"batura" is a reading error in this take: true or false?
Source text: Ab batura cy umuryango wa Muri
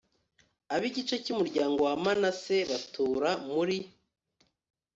true